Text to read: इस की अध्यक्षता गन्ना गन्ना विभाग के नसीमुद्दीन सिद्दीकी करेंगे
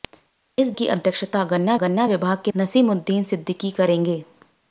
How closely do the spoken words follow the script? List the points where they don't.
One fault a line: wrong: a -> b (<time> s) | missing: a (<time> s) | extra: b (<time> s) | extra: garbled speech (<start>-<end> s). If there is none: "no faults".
no faults